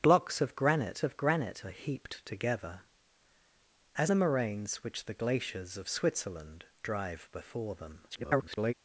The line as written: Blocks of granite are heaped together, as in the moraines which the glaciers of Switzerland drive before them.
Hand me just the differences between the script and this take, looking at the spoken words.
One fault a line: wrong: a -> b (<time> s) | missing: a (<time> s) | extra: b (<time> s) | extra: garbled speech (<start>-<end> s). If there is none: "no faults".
extra: of granite (1.0 s)
missing: in (4.1 s)
extra: garbled speech (8.1-8.7 s)